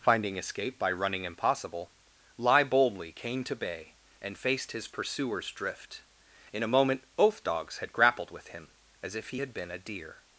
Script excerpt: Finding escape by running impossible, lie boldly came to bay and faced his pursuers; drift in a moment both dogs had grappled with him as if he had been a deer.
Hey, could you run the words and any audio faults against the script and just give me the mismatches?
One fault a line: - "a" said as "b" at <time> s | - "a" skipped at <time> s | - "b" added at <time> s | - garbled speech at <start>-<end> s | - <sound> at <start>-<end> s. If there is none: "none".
none